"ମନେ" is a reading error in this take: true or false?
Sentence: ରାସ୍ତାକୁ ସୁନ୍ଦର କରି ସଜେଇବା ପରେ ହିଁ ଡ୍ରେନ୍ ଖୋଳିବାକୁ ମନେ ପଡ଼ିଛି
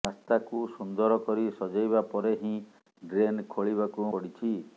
true